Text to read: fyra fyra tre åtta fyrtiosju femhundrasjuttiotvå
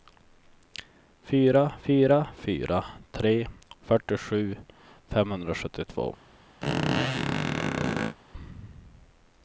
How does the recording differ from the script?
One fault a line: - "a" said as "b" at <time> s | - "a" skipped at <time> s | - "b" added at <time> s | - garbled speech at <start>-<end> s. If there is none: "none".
- "fyra" added at 2.4 s
- "åtta" skipped at 3.3 s